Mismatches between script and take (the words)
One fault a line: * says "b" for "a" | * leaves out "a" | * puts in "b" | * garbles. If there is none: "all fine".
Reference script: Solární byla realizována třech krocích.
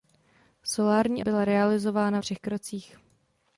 all fine